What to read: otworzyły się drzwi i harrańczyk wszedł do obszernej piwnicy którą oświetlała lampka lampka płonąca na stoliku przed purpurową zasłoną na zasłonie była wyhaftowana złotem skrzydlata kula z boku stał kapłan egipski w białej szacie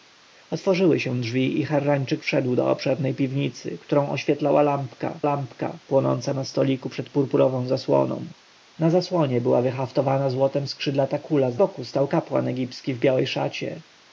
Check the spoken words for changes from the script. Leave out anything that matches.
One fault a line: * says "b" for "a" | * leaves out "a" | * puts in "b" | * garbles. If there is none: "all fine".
all fine